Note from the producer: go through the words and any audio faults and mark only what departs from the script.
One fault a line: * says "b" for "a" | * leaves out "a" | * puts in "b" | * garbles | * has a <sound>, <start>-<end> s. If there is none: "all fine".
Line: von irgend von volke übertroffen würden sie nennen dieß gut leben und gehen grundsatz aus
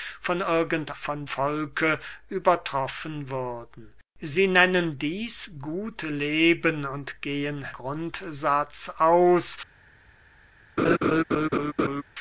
* has a laugh, 10.8-12.0 s